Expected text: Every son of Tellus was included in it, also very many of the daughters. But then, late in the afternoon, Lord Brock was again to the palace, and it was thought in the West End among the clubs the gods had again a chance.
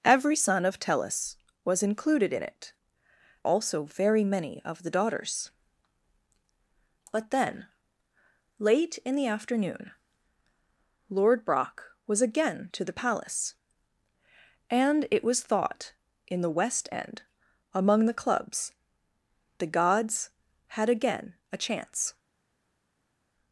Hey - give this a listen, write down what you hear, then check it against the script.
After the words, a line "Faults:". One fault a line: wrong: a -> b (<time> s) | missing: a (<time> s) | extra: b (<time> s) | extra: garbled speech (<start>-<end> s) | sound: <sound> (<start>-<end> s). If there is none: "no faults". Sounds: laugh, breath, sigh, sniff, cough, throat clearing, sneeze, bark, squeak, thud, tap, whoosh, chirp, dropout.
Every son of Tellus was included in it, also very many of the daughters. But then, late in the afternoon, Lord Brock was again to the palace, and it was thought in the West End among the clubs the gods had again a chance.
Faults:
no faults